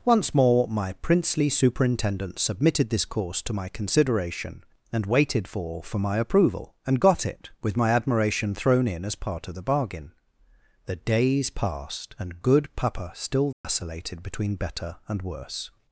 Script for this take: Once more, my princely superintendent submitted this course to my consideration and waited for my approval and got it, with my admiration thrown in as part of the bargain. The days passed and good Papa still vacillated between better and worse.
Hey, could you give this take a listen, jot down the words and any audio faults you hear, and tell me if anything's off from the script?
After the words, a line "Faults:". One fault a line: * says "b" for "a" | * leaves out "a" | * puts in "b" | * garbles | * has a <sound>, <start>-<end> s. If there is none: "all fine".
Once more, my princely superintendent submitted this course to my consideration and waited for for my approval and got it, with my admiration thrown in as part of the bargain. The days passed and good Papa still vacillated between better and worse.
Faults:
* puts in "for"
* has a dropout, 13.5-13.6 s